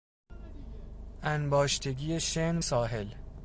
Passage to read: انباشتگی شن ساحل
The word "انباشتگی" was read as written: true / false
true